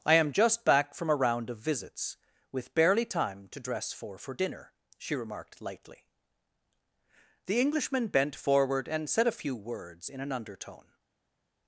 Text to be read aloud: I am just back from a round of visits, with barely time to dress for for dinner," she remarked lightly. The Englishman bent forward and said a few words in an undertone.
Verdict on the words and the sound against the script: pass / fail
pass